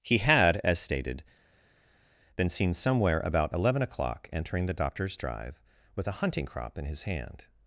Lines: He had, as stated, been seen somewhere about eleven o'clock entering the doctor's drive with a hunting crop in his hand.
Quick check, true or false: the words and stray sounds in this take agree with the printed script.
true